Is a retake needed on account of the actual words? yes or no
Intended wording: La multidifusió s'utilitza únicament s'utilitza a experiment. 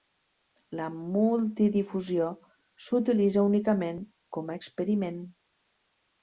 yes